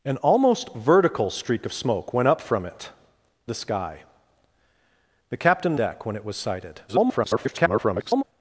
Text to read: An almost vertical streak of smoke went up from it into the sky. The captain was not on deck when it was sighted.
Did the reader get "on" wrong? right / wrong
wrong